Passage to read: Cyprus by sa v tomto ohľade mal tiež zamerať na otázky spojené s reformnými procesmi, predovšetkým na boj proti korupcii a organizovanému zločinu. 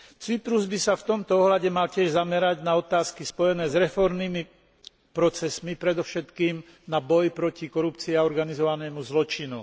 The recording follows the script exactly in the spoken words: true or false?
true